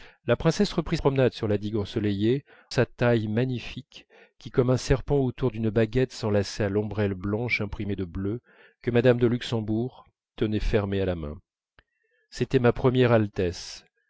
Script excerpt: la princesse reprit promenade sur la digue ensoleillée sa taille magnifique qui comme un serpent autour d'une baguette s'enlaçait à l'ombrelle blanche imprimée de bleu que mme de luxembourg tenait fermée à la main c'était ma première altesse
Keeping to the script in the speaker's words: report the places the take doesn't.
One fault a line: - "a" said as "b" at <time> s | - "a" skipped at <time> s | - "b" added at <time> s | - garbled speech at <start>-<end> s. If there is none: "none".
none